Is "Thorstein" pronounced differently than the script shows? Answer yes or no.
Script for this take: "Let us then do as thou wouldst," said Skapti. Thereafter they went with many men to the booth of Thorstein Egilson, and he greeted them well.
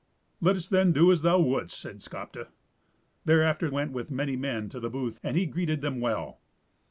yes